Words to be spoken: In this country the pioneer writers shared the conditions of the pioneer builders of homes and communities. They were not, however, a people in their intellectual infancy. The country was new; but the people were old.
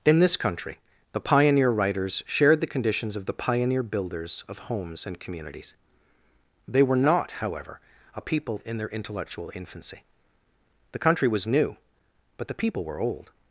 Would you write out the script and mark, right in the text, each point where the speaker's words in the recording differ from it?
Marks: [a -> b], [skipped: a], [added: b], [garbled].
In this country the pioneer writers shared the conditions of the pioneer builders of homes and communities. They were not, however, a people in their intellectual infancy. The country was new; but the people were old.